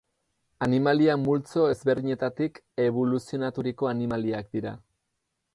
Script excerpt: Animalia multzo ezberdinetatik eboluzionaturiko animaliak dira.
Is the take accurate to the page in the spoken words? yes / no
yes